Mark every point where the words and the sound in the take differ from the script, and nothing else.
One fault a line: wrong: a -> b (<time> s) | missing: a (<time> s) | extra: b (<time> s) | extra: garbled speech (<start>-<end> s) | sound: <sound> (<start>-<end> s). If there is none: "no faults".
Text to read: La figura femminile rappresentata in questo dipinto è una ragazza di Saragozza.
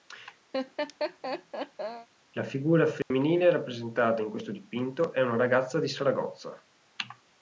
sound: laugh (0.5-2.1 s)
sound: dropout (3.0-3.1 s)